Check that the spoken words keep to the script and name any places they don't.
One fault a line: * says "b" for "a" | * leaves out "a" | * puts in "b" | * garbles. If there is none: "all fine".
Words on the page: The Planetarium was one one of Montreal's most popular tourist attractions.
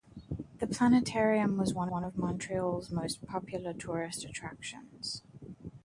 all fine